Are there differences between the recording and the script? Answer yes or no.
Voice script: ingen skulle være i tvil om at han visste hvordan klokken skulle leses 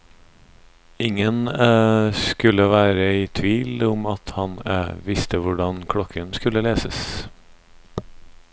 no